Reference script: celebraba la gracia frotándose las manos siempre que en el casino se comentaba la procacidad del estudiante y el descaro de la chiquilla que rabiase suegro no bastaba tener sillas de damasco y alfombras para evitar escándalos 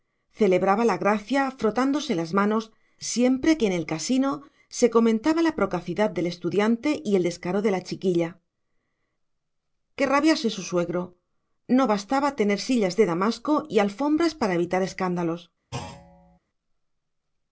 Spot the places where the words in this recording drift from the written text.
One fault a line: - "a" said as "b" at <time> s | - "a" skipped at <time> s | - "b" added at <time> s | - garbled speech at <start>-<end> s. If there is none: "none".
- "su" added at 10.5 s